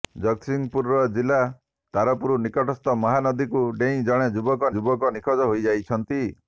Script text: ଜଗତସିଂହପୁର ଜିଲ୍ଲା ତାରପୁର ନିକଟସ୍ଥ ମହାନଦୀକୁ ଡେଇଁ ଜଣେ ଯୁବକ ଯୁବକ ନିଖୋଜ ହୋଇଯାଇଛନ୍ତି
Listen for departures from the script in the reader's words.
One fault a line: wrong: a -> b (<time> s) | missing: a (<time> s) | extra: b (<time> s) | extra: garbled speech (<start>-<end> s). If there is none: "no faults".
no faults